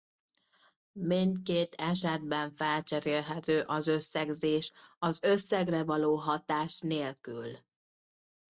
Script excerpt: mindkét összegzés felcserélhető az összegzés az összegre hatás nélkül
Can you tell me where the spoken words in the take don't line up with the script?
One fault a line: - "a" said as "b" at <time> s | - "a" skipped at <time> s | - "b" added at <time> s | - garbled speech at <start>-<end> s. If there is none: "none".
- "összegzés" said as "esetben" at 1.8 s
- "való" added at 5.8 s